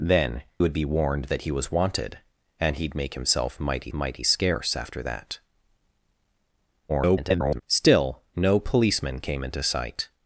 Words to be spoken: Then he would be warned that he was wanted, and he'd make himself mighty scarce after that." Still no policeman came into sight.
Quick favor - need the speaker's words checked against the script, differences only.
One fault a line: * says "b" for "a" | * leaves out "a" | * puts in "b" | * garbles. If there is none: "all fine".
* leaves out "he"
* puts in "mighty"
* garbles